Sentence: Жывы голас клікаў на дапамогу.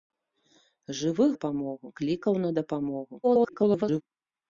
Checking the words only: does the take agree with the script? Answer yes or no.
no